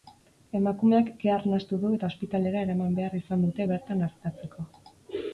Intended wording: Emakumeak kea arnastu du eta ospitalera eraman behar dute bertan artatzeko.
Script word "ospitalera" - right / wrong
right